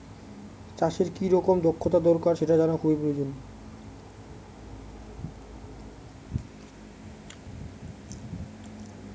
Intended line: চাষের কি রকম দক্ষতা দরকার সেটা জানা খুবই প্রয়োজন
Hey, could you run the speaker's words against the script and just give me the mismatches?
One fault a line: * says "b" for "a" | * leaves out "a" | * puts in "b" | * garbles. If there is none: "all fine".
all fine